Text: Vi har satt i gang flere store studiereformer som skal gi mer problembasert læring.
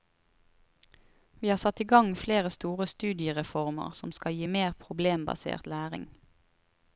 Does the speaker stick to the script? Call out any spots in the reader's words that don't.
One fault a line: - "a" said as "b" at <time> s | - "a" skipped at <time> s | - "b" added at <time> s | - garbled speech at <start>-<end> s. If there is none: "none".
none